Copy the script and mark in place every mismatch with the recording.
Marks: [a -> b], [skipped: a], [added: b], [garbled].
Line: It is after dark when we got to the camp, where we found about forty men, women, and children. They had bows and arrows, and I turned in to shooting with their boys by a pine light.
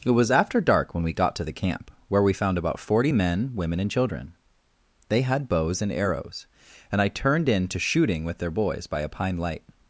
It [is -> was] after dark when we got to the camp, where we found about forty men, women, and children. They had bows and arrows, and I turned in to shooting with their boys by a pine light.